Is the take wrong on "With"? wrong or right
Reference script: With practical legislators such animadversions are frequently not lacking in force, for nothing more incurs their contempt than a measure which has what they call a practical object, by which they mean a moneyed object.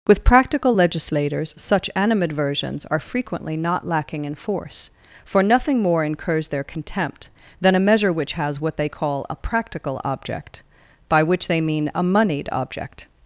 right